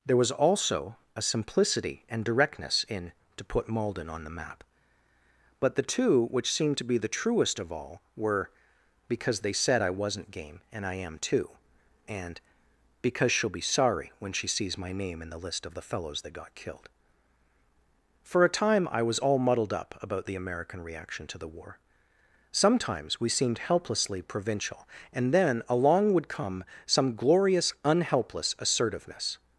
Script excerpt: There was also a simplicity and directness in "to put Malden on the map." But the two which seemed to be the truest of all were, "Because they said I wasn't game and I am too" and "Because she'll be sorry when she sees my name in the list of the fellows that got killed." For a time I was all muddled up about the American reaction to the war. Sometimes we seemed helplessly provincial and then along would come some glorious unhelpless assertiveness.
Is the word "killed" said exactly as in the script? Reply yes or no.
yes